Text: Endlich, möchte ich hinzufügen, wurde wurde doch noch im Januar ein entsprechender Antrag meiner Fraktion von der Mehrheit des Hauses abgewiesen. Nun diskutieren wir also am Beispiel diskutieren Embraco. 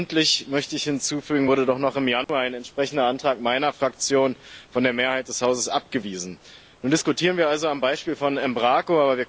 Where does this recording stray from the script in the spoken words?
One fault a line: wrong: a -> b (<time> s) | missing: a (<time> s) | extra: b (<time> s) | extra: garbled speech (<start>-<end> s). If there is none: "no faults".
missing: wurde (1.7 s)
wrong: diskutieren -> von (8.2 s)